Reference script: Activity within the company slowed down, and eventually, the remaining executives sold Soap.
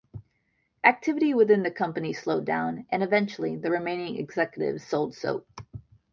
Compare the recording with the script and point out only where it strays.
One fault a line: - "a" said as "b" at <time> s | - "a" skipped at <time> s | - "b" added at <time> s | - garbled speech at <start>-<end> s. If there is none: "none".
none